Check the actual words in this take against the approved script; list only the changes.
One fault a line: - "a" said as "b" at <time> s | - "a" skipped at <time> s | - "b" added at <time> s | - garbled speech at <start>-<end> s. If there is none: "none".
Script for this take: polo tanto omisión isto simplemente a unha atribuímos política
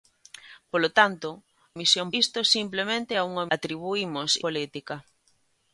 none